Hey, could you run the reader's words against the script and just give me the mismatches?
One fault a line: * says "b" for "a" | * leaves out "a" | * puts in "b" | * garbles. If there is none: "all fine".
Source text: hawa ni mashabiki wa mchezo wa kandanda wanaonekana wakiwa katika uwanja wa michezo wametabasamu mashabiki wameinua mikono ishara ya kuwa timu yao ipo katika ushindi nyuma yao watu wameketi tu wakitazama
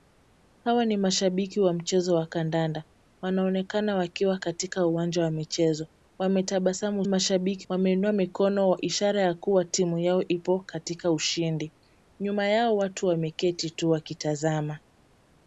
all fine